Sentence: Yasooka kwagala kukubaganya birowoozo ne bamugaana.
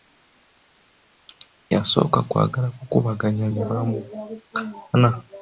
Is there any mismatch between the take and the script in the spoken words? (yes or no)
yes